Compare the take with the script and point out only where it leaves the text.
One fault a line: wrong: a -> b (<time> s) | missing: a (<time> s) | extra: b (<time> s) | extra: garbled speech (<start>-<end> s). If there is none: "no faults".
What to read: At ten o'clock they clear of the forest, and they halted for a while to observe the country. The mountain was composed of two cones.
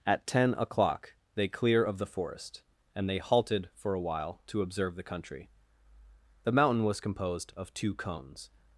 no faults